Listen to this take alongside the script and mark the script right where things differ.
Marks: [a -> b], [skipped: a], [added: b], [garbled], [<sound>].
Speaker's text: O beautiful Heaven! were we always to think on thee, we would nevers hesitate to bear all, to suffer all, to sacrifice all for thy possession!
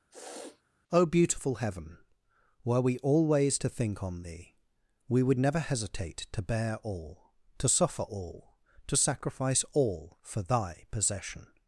[sniff] O beautiful Heaven! were we always to think on thee, we would [nevers -> never] hesitate to bear all, to suffer all, to sacrifice all for thy possession!